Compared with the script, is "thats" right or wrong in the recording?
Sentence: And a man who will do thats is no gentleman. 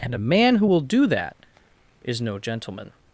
wrong